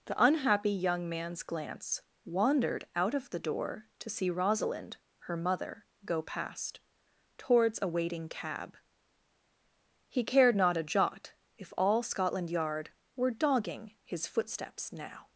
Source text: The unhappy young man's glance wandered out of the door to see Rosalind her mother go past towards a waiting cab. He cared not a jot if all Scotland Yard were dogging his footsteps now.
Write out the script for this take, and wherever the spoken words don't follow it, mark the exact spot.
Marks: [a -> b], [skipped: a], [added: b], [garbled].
The unhappy young man's glance wandered out of the door to see Rosalind her mother go past towards a waiting cab. He cared not a jot if all Scotland Yard were dogging his footsteps now.